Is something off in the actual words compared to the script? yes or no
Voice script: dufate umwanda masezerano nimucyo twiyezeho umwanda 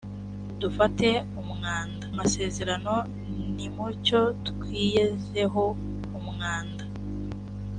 no